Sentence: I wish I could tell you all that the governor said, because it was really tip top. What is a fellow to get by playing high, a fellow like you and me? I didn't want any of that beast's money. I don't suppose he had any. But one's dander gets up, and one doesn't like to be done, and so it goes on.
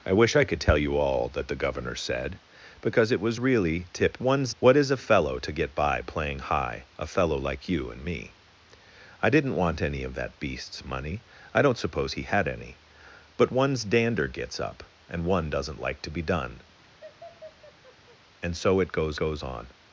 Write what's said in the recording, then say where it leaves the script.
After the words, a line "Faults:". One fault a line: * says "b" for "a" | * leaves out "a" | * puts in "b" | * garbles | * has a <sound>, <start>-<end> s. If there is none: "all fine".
I wish I could tell you all that the governor said, because it was really tip one's. What is a fellow to get by playing high, a fellow like you and me? I didn't want any of that beast's money. I don't suppose he had any. But one's dander gets up, and one doesn't like to be done, and so it goes goes on.
Faults:
* says "one's" for "top"
* has a laugh, 16.8-18.2 s
* puts in "goes"